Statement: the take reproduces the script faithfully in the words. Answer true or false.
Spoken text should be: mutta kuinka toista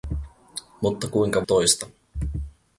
true